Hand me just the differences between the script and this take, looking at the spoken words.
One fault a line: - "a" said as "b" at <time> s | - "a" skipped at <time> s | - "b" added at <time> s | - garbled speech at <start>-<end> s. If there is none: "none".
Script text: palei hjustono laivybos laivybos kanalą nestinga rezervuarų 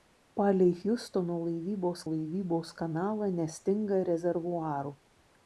none